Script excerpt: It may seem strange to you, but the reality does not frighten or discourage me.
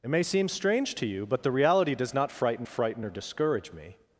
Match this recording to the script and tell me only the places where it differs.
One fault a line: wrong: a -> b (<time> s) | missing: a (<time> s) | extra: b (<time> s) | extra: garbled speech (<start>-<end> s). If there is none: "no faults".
extra: frighten (2.7 s)